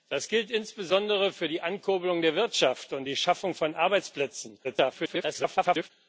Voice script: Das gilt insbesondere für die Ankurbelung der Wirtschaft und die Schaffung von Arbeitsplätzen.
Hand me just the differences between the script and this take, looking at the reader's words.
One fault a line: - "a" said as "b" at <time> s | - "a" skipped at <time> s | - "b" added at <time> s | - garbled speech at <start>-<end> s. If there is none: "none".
- garbled speech at 4.6-5.9 s